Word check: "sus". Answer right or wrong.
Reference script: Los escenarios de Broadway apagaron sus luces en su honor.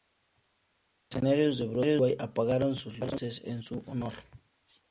right